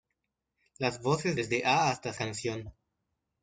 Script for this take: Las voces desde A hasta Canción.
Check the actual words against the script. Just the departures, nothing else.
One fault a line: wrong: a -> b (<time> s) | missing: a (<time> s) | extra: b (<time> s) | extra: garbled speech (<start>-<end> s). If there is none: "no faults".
no faults